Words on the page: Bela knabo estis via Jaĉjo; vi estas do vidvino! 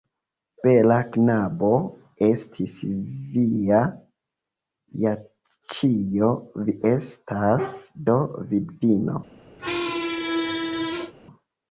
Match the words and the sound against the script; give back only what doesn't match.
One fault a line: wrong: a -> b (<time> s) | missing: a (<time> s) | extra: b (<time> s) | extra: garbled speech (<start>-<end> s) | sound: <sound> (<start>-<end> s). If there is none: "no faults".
sound: squeak (9.6-11.1 s)